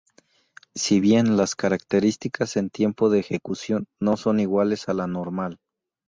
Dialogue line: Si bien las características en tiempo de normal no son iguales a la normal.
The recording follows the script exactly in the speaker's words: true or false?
false